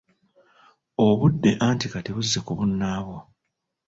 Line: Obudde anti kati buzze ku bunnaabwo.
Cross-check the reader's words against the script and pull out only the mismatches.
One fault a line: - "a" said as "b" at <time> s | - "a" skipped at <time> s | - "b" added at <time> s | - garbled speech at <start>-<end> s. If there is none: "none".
none